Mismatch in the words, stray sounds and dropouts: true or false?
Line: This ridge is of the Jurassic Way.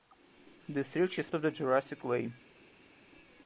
false